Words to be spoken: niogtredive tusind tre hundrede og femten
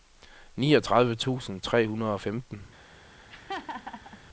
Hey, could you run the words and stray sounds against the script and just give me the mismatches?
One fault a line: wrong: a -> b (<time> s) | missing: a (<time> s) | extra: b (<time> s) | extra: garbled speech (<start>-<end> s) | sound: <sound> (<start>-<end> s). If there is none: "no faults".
sound: laugh (3.3-4.2 s)